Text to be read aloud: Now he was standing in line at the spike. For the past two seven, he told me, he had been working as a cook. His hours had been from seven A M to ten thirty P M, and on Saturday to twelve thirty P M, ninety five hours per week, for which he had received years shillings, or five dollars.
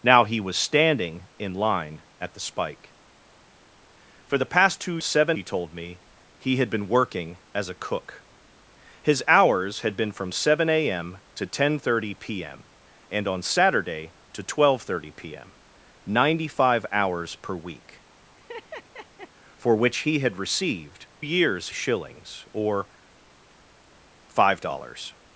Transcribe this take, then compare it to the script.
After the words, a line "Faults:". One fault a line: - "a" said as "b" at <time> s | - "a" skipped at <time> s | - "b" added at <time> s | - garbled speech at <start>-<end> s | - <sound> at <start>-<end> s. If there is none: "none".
Now he was standing in line at the spike. For the past two seven, he told me, he had been working as a cook. His hours had been from seven A M to ten thirty P M, and on Saturday to twelve thirty P M, ninety five hours per week, for which he had received years shillings, or five dollars.
Faults:
- laugh at 18.4-19.3 s